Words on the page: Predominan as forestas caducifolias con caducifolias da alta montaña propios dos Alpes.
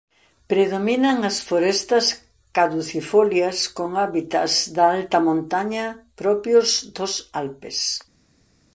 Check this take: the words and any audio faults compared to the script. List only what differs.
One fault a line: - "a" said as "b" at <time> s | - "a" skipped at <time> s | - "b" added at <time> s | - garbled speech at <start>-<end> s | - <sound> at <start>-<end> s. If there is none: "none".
- "caducifolias" said as "hábitats" at 4.0 s